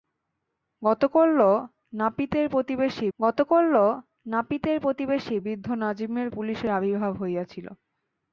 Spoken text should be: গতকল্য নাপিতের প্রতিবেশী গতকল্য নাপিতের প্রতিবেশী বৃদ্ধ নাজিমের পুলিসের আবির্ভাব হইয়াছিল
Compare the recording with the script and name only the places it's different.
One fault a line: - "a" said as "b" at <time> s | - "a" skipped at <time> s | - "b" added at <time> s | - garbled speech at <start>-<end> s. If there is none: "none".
none